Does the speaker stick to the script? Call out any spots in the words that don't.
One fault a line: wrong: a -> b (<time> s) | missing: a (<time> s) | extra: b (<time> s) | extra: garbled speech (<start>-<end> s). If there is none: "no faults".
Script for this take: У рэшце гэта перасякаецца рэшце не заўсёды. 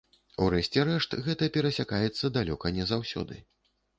extra: рэшт (0.9 s)
wrong: рэшце -> далёка (2.4 s)